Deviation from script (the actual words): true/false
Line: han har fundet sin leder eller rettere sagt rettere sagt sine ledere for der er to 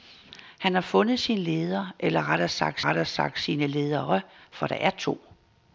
false